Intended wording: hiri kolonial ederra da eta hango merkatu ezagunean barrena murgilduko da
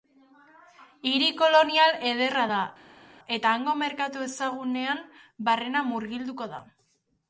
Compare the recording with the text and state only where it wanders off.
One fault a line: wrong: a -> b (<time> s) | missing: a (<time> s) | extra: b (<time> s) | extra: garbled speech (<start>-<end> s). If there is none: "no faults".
no faults